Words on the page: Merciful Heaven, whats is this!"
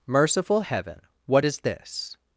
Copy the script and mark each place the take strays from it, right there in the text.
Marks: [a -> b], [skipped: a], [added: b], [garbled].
Merciful Heaven, [whats -> what] is this!"